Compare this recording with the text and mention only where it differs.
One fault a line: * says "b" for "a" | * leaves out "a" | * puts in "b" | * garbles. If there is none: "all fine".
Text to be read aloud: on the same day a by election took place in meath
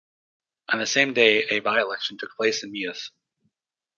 all fine